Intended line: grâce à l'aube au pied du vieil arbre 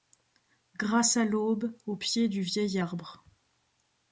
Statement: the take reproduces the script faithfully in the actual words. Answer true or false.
true